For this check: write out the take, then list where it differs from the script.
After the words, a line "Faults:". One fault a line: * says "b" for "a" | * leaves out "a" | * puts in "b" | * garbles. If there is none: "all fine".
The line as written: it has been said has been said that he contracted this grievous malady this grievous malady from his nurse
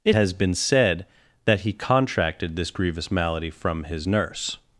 it has been said that he contracted this grievous malady from his nurse
Faults:
* leaves out "has been said"
* leaves out "this grievous malady"